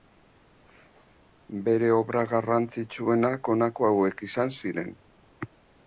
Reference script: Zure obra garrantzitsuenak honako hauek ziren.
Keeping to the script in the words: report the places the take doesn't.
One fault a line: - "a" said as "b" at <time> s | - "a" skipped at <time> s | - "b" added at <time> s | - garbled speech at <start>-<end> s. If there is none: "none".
- "Zure" said as "Bere" at 1.7 s
- "izan" added at 4.3 s